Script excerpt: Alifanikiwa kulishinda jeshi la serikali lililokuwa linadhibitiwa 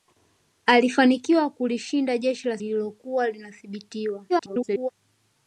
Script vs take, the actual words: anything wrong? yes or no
yes